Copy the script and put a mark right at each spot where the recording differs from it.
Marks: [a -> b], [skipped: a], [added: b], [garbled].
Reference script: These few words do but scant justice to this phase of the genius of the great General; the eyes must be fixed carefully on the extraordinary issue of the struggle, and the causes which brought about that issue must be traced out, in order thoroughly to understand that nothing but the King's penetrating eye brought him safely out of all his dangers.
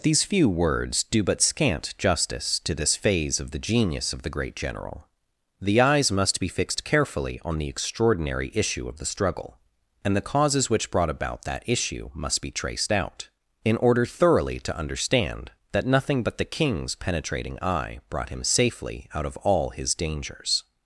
These few words do but scant justice to this phase of the genius of the great General; the eyes must be fixed carefully on the extraordinary issue of the struggle, and the causes which brought about that issue must be traced out, in order thoroughly to understand that nothing but the King's penetrating eye brought him safely out of all his dangers.